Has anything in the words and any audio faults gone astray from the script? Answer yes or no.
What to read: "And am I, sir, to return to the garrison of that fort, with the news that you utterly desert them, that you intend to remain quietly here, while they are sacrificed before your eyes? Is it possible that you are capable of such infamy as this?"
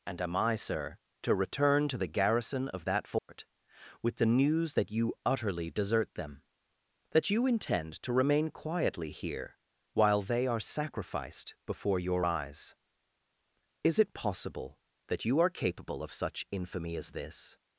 yes